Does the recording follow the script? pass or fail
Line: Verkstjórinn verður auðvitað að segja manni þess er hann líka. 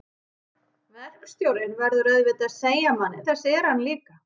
pass